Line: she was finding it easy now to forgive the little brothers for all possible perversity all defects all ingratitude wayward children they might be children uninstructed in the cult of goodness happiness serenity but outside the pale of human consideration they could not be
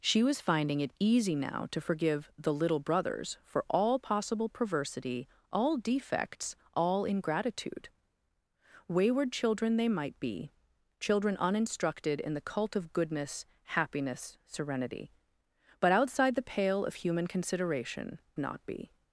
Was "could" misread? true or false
true